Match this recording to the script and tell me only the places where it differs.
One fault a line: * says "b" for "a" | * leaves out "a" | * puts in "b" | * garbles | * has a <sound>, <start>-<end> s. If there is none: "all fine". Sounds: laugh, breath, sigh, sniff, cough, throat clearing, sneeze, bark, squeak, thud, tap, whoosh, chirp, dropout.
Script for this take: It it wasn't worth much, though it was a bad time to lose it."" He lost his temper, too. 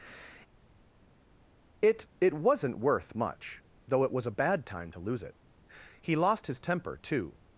all fine